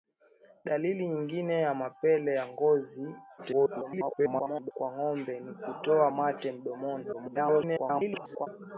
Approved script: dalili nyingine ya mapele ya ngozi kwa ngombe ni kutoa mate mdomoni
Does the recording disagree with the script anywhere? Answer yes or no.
yes